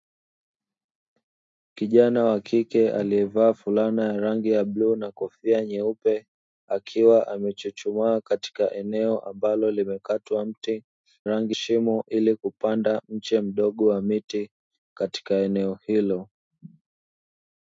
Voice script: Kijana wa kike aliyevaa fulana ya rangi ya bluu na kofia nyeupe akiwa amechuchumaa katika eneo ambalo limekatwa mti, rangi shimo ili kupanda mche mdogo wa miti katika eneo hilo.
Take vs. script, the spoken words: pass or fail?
pass